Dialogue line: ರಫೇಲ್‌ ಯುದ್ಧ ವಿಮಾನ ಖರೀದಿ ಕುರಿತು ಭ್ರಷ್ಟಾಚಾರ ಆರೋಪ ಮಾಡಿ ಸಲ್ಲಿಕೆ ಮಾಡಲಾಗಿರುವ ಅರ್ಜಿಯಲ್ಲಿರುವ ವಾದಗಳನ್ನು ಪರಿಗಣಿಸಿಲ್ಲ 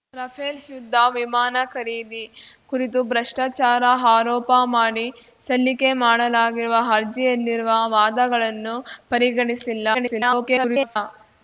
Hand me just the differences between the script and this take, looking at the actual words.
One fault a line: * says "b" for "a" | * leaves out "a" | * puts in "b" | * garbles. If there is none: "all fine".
* garbles